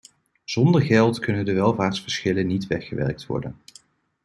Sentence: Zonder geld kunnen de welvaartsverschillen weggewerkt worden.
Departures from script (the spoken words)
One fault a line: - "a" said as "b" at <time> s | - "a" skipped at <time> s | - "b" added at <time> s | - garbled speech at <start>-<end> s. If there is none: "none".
- "niet" added at 2.5 s